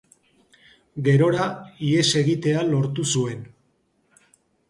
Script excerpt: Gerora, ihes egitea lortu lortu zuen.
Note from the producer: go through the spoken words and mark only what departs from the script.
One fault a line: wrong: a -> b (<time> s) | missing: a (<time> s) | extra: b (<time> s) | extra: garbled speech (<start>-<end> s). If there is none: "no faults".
missing: lortu (3.1 s)